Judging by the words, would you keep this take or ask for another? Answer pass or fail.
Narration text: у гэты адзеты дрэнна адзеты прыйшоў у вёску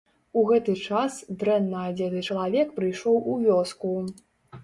fail